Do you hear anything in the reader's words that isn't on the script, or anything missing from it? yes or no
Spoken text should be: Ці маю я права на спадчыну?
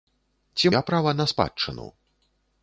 yes